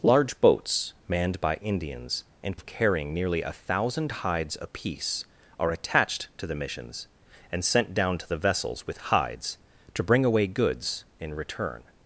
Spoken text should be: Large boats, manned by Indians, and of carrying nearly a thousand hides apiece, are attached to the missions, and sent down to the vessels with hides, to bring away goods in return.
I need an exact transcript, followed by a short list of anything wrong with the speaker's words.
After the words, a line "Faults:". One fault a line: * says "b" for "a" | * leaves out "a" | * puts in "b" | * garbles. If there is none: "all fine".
Large boats, manned by Indians, and of carrying nearly a thousand hides apiece, are attached to the missions, and sent down to the vessels with hides, to bring away goods in return.
Faults:
all fine